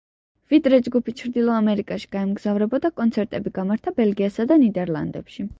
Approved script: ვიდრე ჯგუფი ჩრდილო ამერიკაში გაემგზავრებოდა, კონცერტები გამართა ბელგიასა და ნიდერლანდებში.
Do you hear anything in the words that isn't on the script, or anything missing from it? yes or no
no